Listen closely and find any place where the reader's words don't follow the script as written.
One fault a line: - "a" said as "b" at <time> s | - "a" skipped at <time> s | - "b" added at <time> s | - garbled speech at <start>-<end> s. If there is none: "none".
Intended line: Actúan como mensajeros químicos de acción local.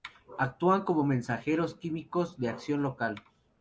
none